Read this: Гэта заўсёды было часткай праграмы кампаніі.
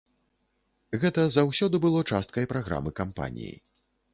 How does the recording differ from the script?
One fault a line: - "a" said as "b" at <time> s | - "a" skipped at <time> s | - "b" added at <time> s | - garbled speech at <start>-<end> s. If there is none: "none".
none